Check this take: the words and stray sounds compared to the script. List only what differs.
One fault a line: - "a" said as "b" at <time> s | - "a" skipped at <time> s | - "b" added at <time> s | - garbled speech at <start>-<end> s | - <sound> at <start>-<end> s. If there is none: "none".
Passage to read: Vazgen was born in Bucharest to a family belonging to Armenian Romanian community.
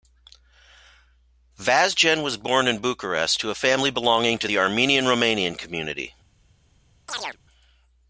- "the" added at 4.4 s
- chirp at 7.1-7.4 s